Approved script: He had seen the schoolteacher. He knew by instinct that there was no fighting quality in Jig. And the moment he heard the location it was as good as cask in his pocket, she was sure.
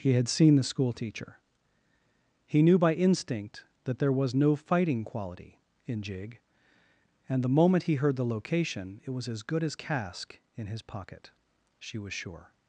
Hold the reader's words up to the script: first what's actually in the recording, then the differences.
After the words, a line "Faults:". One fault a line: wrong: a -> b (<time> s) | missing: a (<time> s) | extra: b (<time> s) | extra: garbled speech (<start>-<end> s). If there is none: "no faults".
He had seen the schoolteacher. He knew by instinct that there was no fighting quality in Jig. And the moment he heard the location it was as good as cask in his pocket, she was sure.
Faults:
no faults